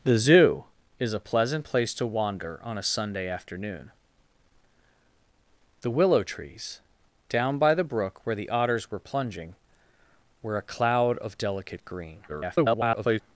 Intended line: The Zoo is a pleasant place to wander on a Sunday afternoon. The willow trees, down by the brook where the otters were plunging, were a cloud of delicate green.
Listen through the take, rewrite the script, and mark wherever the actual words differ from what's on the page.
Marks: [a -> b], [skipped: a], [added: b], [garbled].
The Zoo is a pleasant place to wander on a Sunday afternoon. The willow trees, down by the brook where the otters were plunging, were a cloud of delicate green. [garbled]